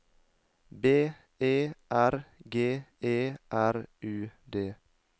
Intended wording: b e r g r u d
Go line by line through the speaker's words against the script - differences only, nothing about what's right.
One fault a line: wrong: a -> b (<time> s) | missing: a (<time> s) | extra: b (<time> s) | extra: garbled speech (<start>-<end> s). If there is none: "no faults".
extra: e (3.0 s)